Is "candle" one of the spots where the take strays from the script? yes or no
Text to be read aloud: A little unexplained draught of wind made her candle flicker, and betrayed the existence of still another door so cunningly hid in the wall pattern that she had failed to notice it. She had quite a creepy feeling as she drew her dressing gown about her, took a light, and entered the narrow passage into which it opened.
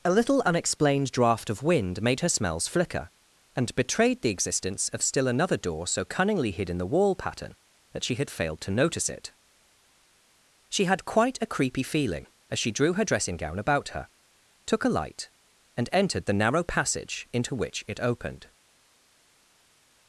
yes